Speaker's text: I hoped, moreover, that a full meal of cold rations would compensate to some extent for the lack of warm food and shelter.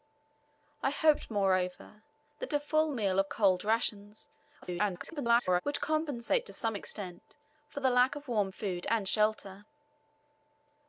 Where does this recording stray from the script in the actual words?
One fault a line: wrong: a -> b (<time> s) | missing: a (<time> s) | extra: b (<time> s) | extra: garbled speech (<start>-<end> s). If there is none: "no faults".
extra: garbled speech (4.6-5.6 s)